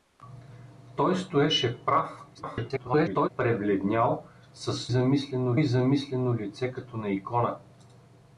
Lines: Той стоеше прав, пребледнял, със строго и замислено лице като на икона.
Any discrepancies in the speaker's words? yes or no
yes